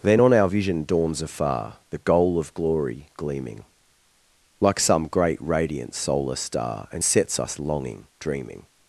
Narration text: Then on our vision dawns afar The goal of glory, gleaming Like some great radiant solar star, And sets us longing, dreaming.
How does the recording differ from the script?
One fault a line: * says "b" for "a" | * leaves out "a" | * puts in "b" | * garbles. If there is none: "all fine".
all fine